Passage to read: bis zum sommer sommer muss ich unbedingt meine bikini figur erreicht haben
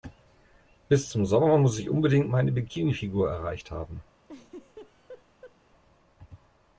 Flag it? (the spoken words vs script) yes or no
yes